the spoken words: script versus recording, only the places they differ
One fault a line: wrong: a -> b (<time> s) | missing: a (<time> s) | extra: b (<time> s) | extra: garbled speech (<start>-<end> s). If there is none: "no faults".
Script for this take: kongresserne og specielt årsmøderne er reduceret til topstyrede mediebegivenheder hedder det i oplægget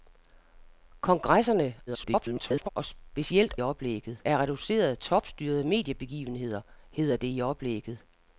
extra: garbled speech (1.9-2.7 s)
wrong: årsmøderne -> oplægget (3.6 s)
missing: til (5.0 s)